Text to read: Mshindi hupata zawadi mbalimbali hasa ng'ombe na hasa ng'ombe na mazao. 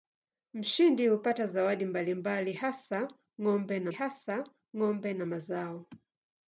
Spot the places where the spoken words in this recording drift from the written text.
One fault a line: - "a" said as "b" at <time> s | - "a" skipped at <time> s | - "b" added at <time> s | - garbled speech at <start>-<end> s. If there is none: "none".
none